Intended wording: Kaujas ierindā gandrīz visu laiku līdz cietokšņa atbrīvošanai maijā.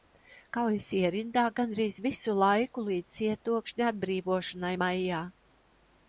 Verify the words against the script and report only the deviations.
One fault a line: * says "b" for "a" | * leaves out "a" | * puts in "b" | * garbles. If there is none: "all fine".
all fine